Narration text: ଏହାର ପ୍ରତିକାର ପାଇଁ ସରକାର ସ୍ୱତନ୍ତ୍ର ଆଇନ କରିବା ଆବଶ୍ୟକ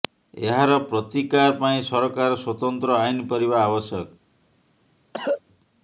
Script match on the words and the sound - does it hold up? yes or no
no